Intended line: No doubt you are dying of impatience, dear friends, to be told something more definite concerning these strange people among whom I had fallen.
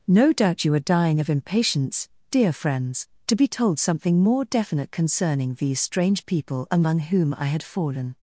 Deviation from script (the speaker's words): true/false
false